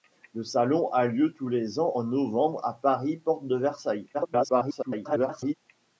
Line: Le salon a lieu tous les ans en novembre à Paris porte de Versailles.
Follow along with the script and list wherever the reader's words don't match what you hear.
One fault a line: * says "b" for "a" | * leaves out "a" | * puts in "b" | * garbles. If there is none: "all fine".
* garbles